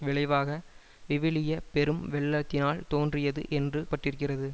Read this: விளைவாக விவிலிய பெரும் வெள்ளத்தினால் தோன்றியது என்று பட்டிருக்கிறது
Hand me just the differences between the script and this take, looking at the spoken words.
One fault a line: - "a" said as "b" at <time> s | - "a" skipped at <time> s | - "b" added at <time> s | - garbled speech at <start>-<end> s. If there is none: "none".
none